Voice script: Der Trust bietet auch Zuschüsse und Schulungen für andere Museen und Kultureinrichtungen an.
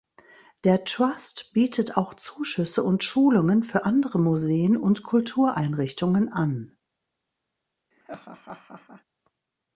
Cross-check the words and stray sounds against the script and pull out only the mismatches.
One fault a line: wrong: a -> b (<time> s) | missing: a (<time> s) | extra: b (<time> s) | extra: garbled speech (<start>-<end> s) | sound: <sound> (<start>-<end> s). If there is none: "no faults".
sound: laugh (7.9-9.0 s)